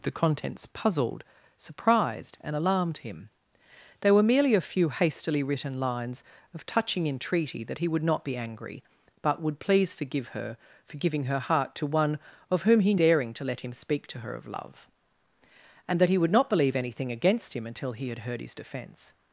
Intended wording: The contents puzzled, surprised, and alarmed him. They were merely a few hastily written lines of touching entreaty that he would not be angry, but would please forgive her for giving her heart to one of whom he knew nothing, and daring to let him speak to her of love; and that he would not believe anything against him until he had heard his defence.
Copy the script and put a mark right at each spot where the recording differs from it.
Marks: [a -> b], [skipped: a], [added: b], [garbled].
The contents puzzled, surprised, and alarmed him. They were merely a few hastily written lines of touching entreaty that he would not be angry, but would please forgive her for giving her heart to one of whom he [skipped: knew nothing, and] daring to let him speak to her of love; and that he would not believe anything against him until he had heard his defence.